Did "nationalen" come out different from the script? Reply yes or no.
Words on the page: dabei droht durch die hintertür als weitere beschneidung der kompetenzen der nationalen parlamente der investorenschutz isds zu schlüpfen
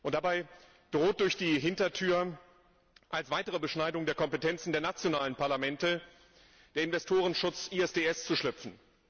no